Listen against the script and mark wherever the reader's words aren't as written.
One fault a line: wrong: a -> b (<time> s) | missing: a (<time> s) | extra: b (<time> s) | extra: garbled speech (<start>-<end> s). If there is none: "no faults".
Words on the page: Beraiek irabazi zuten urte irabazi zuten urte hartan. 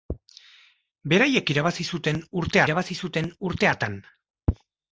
no faults